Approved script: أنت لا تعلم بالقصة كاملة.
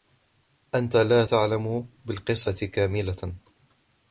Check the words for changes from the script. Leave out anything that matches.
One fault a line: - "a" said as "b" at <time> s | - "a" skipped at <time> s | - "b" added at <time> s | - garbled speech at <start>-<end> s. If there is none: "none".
none